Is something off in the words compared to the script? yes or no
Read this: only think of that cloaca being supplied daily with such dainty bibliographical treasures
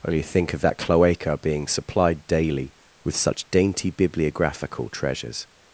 no